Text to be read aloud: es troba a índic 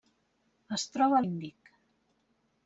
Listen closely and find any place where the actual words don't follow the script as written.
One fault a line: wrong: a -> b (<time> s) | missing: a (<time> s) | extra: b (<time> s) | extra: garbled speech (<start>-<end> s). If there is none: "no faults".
no faults